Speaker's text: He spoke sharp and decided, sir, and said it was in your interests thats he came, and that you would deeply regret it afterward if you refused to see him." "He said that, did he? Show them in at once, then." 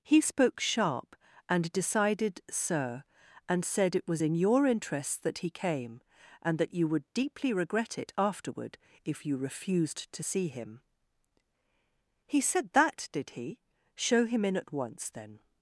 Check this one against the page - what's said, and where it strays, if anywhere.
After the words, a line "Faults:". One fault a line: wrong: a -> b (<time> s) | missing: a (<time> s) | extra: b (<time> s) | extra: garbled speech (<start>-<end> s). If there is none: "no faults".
He spoke sharp and decided, sir, and said it was in your interests that he came, and that you would deeply regret it afterward if you refused to see him." "He said that, did he? Show him in at once, then."
Faults:
wrong: thats -> that (5.2 s)
wrong: them -> him (14.3 s)